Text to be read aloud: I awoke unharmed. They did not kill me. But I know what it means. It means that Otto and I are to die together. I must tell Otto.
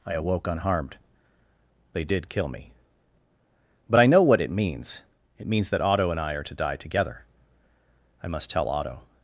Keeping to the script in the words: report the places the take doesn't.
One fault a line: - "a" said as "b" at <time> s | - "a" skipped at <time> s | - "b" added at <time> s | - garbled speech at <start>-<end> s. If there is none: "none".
- "not" skipped at 2.3 s